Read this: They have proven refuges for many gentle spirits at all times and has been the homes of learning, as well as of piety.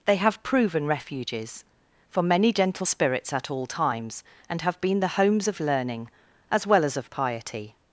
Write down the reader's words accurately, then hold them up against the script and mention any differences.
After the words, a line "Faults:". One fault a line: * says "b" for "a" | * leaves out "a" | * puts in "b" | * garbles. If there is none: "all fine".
They have proven refuges for many gentle spirits at all times and have been the homes of learning, as well as of piety.
Faults:
* says "have" for "has"